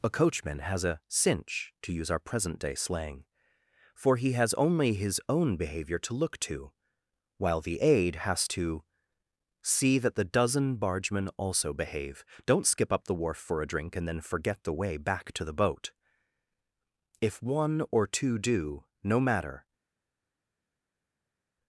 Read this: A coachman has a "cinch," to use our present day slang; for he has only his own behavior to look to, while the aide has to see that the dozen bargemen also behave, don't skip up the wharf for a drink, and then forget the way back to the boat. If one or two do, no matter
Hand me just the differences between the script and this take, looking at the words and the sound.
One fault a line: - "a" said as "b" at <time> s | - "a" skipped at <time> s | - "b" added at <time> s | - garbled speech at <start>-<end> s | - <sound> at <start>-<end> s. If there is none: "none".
none